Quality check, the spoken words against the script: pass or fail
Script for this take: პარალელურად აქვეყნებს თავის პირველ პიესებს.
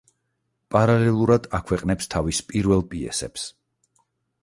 pass